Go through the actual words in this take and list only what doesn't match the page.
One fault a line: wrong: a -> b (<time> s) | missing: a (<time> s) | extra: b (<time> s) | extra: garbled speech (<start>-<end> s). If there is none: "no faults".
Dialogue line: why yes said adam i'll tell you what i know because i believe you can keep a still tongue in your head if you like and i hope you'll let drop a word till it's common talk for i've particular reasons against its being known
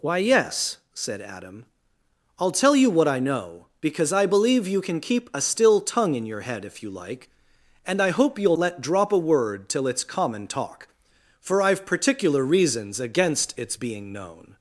no faults